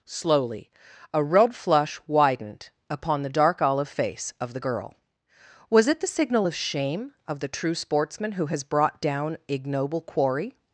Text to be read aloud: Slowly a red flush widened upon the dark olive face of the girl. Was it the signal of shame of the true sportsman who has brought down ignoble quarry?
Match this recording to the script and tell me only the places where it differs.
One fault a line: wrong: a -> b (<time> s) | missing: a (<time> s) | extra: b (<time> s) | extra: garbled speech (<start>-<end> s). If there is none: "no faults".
no faults